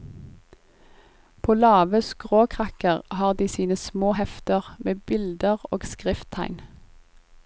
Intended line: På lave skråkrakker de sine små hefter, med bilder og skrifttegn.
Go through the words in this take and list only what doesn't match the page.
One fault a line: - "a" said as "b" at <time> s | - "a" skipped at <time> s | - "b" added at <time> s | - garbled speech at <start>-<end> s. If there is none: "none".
- "har" added at 3.1 s